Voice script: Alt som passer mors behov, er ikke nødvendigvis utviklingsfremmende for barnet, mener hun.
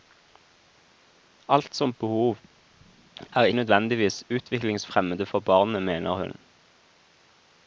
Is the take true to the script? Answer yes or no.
no